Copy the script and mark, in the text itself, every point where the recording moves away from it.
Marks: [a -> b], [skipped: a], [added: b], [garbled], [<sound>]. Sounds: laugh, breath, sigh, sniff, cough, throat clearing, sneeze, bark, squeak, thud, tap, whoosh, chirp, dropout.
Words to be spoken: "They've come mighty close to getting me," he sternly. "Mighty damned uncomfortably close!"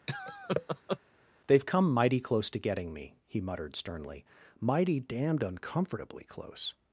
[laugh] "They've come mighty close to getting me," he [added: muttered] sternly. "Mighty damned uncomfortably close!"